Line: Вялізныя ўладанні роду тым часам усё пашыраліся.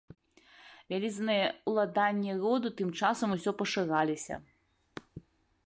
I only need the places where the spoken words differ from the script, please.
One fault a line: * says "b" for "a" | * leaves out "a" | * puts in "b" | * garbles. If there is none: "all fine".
all fine